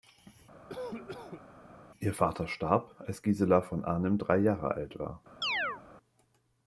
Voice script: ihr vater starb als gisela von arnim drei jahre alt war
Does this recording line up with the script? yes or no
yes